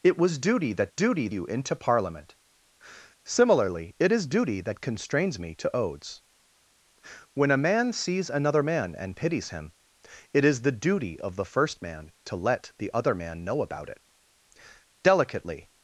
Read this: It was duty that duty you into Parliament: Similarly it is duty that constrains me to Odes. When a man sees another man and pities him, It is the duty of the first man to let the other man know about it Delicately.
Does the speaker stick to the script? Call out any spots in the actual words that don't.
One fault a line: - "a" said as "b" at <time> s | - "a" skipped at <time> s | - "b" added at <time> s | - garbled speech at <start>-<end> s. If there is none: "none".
none